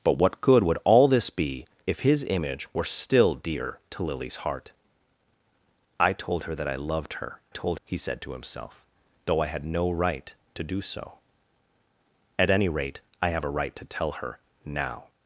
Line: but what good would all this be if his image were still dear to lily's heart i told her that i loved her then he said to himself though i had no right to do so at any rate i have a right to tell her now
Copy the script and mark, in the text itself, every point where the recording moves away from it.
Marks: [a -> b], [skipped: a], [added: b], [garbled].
but what good would all this be if his image were still dear to lily's heart i told her that i loved her [then -> told] he said to himself though i had no right to do so at any rate i have a right to tell her now